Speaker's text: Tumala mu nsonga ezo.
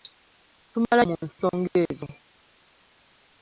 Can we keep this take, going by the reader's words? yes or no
yes